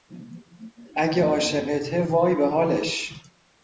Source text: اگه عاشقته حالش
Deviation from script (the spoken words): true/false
true